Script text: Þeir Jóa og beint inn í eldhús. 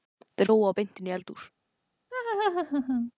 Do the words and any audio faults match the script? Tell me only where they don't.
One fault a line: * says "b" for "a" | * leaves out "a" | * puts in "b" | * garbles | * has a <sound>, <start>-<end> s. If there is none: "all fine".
* has a laugh, 2.1-3.1 s